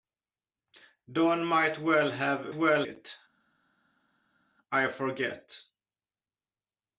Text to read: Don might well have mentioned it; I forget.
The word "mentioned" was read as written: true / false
false